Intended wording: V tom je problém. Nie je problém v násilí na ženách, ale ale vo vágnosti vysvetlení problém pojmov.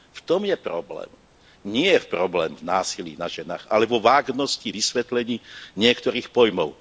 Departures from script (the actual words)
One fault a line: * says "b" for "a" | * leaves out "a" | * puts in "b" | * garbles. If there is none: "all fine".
* leaves out "ale"
* says "niektorých" for "problém"